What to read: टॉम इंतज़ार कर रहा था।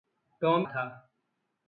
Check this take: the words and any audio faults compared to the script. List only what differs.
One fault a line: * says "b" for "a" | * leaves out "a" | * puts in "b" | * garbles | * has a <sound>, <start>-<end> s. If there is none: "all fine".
* leaves out "इंतज़ार कर रहा"